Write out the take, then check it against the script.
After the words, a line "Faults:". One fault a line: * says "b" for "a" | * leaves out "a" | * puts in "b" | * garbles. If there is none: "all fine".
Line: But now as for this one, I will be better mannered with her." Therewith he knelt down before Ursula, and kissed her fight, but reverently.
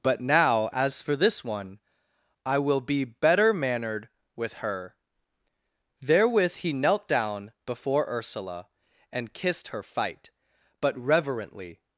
But now as for this one, I will be better mannered with her." Therewith he knelt down before Ursula, and kissed her fight, but reverently.
Faults:
all fine